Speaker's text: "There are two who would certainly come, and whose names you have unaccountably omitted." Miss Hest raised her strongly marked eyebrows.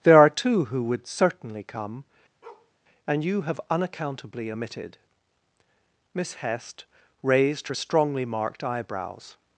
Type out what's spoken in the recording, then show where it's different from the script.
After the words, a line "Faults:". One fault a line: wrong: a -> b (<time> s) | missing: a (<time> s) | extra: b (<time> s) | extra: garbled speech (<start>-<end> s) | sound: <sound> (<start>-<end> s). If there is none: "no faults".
"There are two who would certainly come, and you have unaccountably omitted." Miss Hest raised her strongly marked eyebrows.
Faults:
sound: bark (2.4-2.7 s)
missing: whose names (3.2 s)